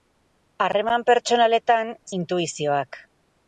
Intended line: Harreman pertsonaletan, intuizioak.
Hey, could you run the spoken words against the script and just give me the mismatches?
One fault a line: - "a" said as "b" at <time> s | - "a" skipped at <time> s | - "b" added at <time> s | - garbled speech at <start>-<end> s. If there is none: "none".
none